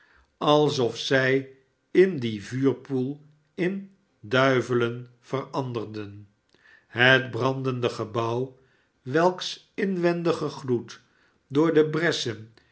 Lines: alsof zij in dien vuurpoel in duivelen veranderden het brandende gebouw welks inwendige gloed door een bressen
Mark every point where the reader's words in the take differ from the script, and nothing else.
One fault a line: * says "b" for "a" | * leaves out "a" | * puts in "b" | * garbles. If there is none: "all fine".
* says "de" for "een"